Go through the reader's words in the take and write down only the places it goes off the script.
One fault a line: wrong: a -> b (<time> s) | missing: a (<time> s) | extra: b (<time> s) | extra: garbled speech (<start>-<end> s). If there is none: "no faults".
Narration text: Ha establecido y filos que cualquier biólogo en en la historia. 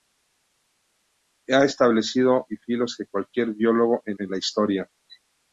no faults